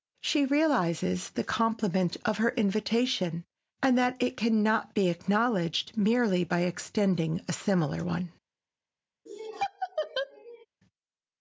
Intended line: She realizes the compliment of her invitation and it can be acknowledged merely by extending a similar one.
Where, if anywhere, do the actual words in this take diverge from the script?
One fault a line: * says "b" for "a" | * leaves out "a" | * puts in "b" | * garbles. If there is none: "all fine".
* puts in "that"
* puts in "not"